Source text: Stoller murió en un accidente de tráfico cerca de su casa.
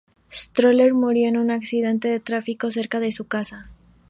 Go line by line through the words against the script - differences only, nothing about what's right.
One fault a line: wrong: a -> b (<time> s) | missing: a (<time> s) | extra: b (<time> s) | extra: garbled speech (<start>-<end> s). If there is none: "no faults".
no faults